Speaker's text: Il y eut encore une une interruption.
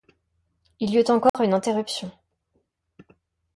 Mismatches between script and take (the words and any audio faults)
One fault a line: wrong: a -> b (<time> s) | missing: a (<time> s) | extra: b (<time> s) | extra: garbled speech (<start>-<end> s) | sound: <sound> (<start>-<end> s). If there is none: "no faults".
sound: dropout (1.3-1.3 s)
missing: une (1.5 s)